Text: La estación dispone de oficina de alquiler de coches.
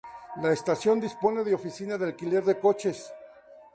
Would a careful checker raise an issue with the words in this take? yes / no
no